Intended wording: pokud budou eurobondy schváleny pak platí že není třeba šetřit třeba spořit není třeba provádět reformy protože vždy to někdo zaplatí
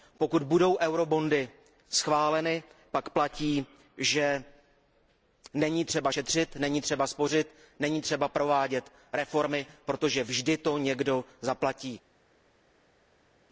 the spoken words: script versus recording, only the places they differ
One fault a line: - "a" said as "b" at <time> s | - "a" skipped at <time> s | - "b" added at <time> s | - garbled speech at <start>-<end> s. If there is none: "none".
- "není" added at 6.6 s